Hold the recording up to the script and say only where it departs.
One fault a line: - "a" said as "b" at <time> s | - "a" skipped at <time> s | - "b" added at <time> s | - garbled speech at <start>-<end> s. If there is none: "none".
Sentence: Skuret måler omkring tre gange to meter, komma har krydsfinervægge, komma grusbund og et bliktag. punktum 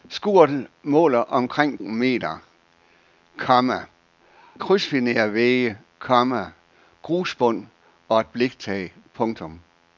- "tre gange to" skipped at 1.8 s
- "har" skipped at 3.8 s